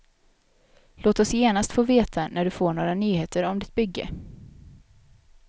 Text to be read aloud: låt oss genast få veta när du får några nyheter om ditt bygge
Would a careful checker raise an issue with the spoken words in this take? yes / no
no